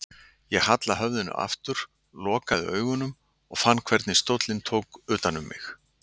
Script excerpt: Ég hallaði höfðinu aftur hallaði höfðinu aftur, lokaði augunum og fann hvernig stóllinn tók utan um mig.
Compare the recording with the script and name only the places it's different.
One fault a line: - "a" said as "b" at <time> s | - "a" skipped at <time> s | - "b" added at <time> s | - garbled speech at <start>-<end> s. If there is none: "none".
- "hallaði höfðinu aftur" skipped at 1.8 s